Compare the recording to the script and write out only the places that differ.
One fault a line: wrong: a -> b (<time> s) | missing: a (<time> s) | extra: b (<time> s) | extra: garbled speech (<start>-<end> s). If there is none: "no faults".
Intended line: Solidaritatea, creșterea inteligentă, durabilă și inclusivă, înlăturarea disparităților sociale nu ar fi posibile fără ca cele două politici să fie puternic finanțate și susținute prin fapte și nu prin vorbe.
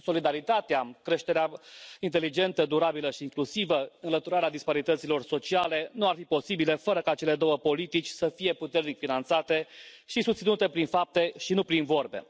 no faults